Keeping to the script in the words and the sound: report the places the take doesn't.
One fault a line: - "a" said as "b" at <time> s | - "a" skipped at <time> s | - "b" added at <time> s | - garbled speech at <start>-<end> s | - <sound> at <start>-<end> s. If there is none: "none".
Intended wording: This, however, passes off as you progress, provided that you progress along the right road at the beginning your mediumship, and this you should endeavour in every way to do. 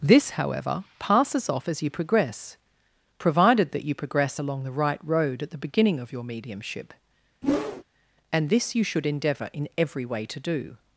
- "of" added at 6.0 s
- whoosh at 7.4-7.8 s